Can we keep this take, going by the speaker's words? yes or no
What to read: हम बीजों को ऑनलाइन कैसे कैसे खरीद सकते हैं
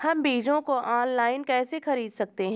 no